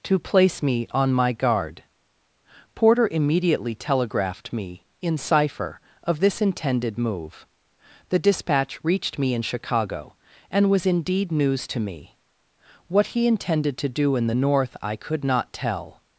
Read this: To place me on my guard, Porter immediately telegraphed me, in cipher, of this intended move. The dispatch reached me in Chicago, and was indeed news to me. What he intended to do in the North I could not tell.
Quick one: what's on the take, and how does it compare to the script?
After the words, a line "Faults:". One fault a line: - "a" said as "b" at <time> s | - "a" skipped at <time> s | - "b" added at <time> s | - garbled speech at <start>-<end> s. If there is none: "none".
To place me on my guard, Porter immediately telegraphed me, in cipher, of this intended move. The dispatch reached me in Chicago, and was indeed news to me. What he intended to do in the North I could not tell.
Faults:
none